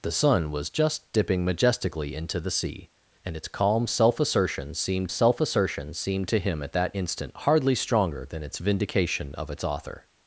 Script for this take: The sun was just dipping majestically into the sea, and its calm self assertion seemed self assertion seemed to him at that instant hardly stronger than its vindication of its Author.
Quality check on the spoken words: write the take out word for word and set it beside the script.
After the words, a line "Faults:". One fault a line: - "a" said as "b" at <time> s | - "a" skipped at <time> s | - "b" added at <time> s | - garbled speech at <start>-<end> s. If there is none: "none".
The sun was just dipping majestically into the sea, and its calm self assertion seemed self assertion seemed to him at that instant hardly stronger than its vindication of its Author.
Faults:
none